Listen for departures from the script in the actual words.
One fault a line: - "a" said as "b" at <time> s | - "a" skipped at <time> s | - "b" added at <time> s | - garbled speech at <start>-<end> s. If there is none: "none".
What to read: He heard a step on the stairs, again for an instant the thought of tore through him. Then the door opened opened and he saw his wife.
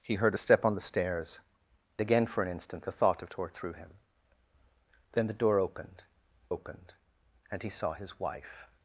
none